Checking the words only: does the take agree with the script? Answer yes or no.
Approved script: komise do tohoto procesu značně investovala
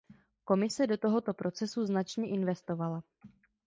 yes